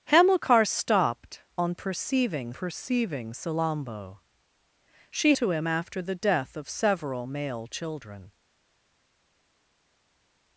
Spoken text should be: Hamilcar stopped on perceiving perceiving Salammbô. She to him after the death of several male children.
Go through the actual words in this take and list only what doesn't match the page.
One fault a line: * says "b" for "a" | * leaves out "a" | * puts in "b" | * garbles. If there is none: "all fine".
all fine